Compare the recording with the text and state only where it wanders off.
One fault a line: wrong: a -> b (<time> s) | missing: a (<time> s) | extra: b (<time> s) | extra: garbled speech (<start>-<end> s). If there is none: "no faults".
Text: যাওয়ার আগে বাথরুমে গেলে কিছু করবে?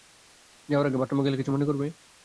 extra: মনে (1.5 s)